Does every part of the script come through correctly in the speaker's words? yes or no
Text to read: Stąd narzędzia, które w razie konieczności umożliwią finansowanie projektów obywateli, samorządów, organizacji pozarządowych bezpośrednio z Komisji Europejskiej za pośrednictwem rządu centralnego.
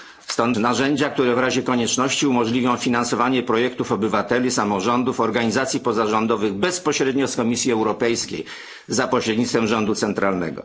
yes